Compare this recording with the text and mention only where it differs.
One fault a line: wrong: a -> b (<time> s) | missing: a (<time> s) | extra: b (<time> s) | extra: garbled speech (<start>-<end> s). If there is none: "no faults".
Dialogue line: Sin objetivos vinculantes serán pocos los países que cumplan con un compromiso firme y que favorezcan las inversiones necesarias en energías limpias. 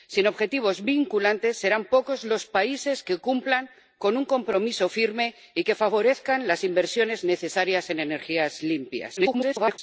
extra: garbled speech (9.2-9.8 s)